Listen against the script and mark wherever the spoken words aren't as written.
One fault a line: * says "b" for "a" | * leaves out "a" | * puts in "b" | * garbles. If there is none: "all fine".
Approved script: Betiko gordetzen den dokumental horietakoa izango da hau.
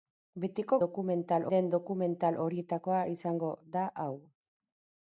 * says "dokumental" for "gordetzen"